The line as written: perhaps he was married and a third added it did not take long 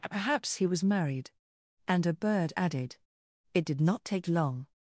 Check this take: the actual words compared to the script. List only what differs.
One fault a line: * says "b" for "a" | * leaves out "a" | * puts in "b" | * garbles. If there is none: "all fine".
* says "bird" for "third"